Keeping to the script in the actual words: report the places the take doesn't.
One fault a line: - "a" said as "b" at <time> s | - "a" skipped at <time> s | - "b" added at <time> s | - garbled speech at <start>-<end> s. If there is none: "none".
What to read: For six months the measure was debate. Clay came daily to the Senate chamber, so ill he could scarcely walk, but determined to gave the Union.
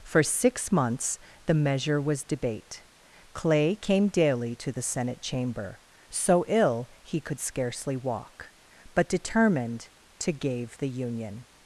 none